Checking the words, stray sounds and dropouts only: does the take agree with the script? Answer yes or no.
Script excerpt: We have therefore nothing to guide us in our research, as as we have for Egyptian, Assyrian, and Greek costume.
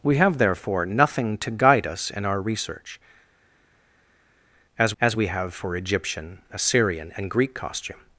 yes